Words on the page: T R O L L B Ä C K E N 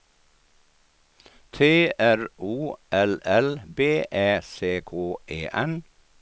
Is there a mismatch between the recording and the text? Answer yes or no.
no